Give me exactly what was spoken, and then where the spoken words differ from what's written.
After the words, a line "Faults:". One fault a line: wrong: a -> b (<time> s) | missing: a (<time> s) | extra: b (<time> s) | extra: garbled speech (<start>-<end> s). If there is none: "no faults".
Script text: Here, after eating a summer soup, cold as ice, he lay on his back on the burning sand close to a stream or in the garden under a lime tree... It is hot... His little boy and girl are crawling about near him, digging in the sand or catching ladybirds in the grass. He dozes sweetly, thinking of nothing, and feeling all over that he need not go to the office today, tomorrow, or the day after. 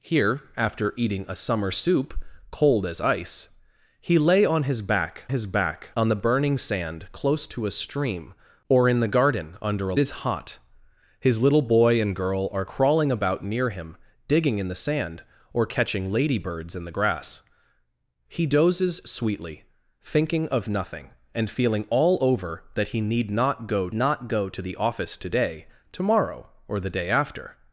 Here, after eating a summer soup, cold as ice, he lay on his back his back on the burning sand close to a stream or in the garden under a is hot... His little boy and girl are crawling about near him, digging in the sand or catching ladybirds in the grass. He dozes sweetly, thinking of nothing, and feeling all over that he need not go not go to the office today, tomorrow, or the day after.
Faults:
extra: his back (5.3 s)
missing: lime tree It (9.9 s)
extra: not go (23.9 s)